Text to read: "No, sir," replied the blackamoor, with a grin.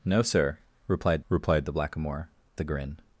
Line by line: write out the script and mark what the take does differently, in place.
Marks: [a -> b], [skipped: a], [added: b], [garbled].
"No, sir," replied [added: replied] the blackamoor, [skipped: with] a grin.